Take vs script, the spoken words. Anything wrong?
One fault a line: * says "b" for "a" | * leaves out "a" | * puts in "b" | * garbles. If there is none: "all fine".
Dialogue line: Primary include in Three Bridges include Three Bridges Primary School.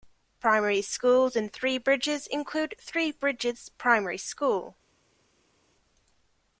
* says "schools" for "include"